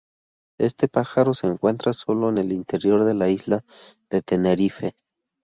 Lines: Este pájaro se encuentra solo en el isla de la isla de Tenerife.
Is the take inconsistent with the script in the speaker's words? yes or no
yes